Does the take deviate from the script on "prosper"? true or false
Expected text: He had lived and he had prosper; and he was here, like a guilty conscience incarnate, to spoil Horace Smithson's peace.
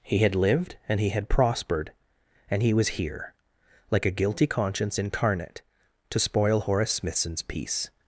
true